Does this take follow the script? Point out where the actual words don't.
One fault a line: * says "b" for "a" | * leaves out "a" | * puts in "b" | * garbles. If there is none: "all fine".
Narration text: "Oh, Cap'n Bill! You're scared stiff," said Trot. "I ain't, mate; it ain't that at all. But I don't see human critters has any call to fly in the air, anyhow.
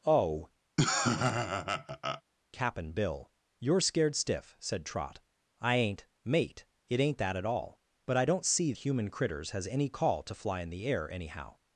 all fine